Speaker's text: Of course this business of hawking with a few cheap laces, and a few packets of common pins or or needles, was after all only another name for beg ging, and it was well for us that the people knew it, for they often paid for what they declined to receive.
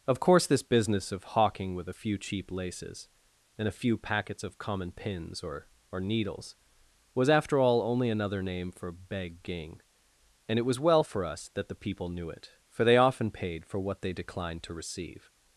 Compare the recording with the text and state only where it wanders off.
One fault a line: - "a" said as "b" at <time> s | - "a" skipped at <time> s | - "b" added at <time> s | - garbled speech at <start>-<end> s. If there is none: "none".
none